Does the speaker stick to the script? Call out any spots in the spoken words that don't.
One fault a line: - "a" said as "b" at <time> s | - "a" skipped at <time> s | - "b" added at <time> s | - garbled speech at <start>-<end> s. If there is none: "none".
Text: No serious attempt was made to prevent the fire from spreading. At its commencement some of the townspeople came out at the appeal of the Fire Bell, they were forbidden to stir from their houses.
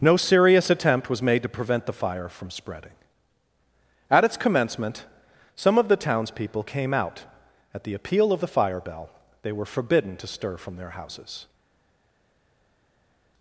none